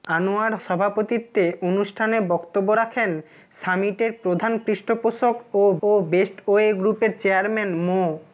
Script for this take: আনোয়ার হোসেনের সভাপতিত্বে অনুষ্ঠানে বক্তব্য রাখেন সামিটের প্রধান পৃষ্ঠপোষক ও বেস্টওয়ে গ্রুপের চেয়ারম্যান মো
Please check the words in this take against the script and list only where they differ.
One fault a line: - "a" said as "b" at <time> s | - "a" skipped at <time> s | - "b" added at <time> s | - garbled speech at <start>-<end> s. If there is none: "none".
- "হোসেনের" skipped at 0.5 s
- "ও" added at 5.8 s